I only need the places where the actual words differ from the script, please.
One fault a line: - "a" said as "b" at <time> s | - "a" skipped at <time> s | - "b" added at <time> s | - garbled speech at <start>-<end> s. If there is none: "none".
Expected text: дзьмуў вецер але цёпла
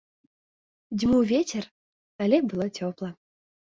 - "было" added at 2.5 s